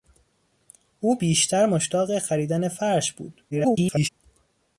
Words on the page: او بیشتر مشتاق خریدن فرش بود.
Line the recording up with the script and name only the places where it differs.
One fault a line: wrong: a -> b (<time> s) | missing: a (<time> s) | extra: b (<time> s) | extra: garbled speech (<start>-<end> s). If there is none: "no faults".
extra: garbled speech (3.5-4.1 s)